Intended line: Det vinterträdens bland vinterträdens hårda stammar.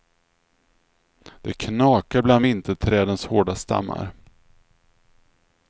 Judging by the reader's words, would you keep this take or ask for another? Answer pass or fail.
fail